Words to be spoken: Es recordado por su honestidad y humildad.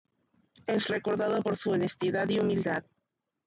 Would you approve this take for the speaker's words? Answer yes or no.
yes